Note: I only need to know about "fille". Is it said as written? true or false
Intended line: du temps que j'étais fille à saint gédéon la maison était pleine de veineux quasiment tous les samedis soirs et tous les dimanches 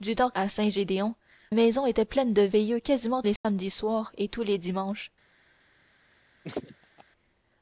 false